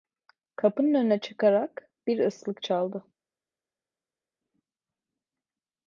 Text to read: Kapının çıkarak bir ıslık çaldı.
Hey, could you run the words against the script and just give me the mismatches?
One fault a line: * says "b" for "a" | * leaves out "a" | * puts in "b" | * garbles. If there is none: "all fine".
* puts in "önüne"